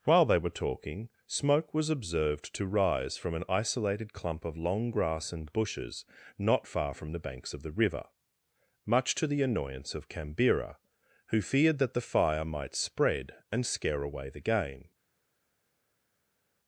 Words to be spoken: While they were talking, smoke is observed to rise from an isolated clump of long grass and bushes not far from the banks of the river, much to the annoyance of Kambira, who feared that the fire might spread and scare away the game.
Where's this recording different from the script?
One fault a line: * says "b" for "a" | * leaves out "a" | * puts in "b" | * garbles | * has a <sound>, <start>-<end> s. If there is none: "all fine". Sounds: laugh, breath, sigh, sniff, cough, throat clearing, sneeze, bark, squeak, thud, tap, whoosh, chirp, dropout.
* says "was" for "is"